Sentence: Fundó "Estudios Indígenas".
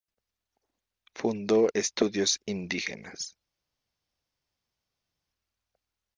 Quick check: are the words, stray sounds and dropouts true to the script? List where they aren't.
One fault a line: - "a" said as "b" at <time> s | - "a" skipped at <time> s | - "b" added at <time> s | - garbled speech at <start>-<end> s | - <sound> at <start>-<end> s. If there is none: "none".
none